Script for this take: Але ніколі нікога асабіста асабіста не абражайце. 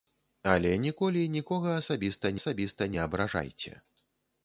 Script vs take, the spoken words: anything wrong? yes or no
no